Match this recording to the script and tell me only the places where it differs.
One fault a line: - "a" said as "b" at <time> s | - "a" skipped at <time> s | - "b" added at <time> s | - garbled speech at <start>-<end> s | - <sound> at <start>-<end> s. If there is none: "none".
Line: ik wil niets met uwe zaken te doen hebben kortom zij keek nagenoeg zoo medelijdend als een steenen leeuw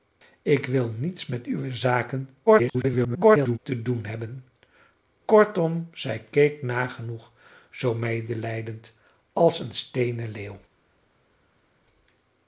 - garbled speech at 2.5-3.6 s